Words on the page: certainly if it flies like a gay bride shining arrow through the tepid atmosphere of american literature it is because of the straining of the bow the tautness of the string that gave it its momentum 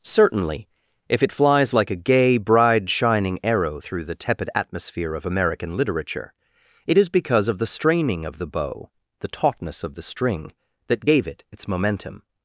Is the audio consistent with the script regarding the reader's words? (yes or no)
yes